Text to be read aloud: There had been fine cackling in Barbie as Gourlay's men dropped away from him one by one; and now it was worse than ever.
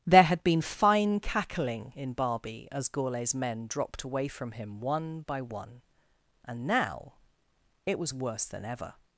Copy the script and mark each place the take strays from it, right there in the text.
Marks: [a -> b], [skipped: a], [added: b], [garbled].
There had been fine cackling in Barbie as Gourlay's men dropped away from him one by one; and now it was worse than ever.